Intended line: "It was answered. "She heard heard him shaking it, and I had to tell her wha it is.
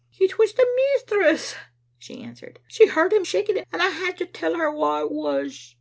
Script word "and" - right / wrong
right